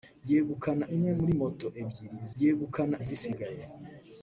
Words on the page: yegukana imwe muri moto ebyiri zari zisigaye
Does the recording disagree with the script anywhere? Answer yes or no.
yes